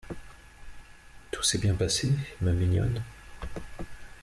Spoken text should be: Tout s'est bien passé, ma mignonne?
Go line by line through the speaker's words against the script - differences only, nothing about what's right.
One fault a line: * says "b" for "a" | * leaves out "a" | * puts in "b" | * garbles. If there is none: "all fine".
all fine